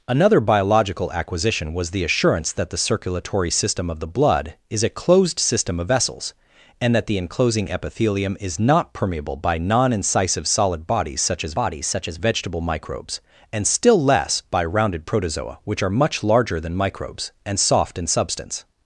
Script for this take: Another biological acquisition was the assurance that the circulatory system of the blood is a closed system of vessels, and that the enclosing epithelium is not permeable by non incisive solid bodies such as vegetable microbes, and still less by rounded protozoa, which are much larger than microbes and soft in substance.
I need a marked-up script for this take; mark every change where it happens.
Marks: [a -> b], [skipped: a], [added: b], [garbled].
Another biological acquisition was the assurance that the circulatory system of the blood is a closed system of vessels, and that the enclosing epithelium is not permeable by non incisive solid bodies such as [added: bodies such as] vegetable microbes, and still less by rounded protozoa, which are much larger than microbes and soft in substance.